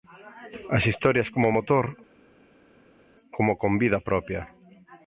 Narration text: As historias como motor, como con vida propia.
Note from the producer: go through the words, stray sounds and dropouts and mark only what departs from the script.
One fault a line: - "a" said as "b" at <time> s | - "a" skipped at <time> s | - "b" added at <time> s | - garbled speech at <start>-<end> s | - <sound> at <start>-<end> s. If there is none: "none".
none